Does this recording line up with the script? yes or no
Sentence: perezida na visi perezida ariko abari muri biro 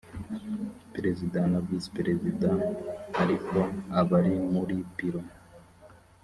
yes